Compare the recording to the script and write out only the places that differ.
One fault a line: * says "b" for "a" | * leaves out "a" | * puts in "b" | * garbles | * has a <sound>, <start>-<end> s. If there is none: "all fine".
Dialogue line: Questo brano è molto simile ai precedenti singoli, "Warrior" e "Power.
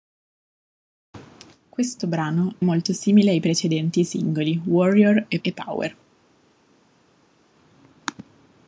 * leaves out "è"
* puts in "e"